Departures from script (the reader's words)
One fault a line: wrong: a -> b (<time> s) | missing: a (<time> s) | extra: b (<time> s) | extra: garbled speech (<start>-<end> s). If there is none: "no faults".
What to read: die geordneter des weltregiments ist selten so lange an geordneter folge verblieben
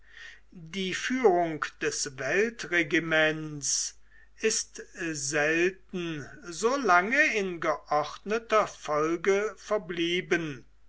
wrong: geordneter -> führung (0.9 s)
wrong: an -> in (7.3 s)